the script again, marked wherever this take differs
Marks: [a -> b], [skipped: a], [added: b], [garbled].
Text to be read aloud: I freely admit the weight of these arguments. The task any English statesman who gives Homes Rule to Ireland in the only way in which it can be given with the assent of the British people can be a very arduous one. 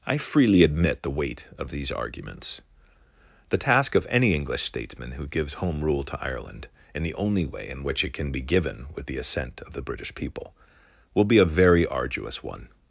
I freely admit the weight of these arguments. The task [added: of] any English statesman who gives [Homes -> Home] Rule to Ireland in the only way in which it can be given with the assent of the British people [can -> will] be a very arduous one.